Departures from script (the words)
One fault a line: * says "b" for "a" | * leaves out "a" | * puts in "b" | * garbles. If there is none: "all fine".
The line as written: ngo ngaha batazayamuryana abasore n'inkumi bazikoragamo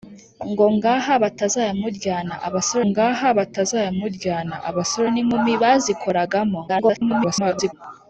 * puts in "ngaha batazayamuryana abasore"
* garbles